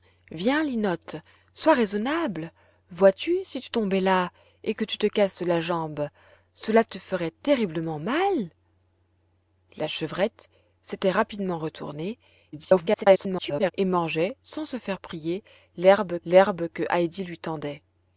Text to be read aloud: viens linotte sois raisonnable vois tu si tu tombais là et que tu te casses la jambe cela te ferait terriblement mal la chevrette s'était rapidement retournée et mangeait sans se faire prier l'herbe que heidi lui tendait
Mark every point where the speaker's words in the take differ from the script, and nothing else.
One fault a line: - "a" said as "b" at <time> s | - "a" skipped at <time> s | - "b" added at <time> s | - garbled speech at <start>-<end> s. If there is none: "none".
- garbled speech at 12.5-13.7 s
- "l'herbe" added at 16.2 s